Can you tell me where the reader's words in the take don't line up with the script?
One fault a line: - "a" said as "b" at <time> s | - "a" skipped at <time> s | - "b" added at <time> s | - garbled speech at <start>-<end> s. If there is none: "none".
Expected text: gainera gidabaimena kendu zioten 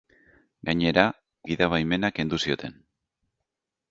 none